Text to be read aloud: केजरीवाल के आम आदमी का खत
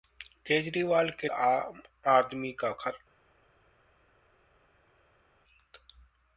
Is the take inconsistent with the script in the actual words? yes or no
no